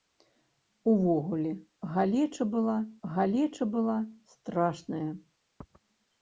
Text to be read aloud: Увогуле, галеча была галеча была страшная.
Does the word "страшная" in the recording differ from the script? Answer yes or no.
no